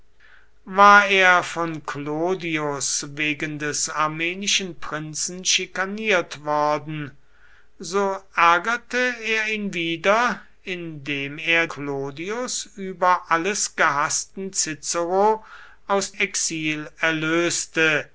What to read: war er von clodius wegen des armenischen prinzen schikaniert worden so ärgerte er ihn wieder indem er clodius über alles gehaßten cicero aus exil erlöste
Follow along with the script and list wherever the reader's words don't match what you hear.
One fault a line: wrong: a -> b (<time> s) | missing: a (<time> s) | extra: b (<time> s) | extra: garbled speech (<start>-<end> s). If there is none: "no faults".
no faults